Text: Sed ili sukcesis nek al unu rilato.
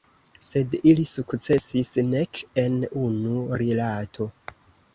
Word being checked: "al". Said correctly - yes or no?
no